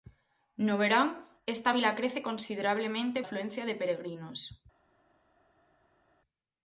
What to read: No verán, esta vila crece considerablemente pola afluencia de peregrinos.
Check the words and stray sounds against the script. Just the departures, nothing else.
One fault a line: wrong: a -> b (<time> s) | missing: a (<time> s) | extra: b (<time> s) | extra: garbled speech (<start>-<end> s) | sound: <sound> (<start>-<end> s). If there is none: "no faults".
missing: pola (3.2 s)